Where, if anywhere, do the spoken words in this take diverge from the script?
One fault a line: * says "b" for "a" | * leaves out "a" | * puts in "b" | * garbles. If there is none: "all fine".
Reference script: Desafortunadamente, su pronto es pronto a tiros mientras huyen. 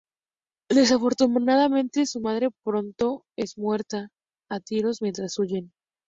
* puts in "madre"
* says "muerta" for "pronto"